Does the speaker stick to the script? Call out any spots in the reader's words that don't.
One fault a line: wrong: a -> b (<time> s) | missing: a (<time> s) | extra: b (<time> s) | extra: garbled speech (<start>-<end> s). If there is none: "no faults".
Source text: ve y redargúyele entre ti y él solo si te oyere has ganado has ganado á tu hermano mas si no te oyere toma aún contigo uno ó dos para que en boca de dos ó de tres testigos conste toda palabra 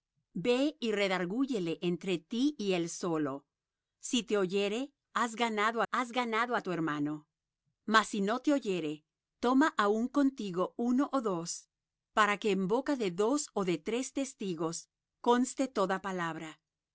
no faults